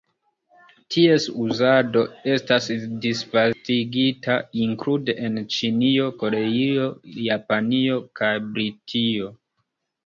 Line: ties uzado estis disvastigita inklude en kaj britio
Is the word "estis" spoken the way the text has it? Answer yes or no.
no